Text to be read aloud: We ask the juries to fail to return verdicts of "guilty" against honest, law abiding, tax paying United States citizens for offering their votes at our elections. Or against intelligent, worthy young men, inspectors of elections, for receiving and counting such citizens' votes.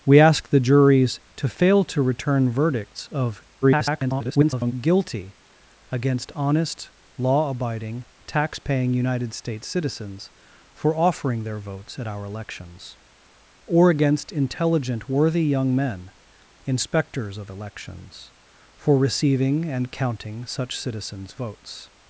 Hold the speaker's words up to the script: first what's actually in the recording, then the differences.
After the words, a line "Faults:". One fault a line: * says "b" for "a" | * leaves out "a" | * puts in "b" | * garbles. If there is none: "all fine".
We ask the juries to fail to return verdicts of [garbled] "guilty" against honest, law abiding, tax paying United States citizens for offering their votes at our elections. Or against intelligent, worthy young men, inspectors of elections, for receiving and counting such citizens' votes.
Faults:
* garbles